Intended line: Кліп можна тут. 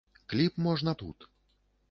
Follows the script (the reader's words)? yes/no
yes